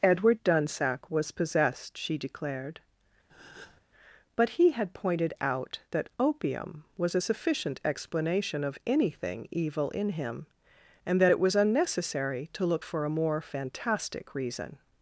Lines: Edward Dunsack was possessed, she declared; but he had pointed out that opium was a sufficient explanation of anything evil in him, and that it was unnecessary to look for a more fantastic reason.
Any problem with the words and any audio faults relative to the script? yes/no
yes